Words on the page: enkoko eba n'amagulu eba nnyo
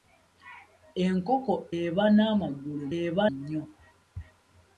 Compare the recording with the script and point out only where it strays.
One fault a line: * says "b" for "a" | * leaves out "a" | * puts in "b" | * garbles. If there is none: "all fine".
all fine